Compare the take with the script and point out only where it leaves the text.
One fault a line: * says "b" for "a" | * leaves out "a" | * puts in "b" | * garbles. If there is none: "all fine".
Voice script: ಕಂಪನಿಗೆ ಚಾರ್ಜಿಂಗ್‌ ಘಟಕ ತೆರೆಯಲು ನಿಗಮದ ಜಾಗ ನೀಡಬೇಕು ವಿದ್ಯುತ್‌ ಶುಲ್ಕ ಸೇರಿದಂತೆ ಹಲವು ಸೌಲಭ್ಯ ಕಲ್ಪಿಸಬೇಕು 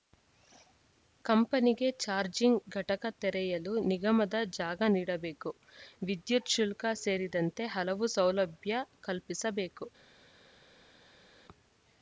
all fine